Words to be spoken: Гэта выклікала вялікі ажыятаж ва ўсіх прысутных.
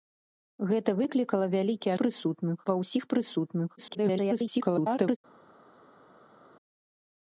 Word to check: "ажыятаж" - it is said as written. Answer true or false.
false